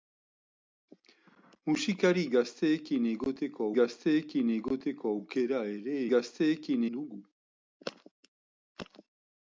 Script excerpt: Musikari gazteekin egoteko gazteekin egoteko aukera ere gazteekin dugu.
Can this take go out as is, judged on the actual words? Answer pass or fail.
pass